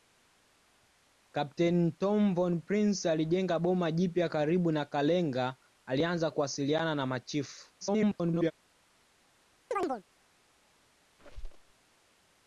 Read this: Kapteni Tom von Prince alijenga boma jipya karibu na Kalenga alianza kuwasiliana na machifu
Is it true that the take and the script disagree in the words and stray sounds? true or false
true